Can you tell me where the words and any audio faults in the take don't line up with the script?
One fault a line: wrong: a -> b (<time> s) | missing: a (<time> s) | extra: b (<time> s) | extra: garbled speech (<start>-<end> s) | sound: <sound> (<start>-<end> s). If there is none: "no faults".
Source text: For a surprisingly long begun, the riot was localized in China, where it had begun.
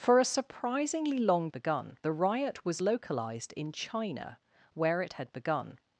no faults